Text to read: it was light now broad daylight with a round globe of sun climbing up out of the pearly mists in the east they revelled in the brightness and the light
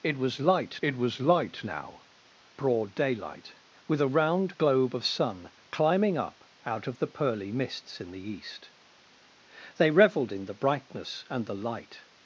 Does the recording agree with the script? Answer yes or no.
no